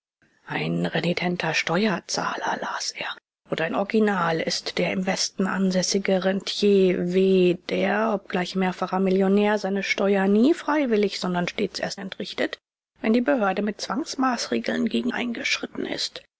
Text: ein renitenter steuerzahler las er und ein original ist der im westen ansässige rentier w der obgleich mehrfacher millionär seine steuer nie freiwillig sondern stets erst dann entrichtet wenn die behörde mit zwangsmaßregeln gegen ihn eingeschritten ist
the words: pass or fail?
fail